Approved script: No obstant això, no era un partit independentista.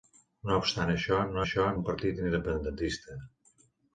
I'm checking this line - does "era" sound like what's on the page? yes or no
no